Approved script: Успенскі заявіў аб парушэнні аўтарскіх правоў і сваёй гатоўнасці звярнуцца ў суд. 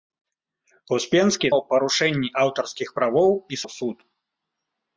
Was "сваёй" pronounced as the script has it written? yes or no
no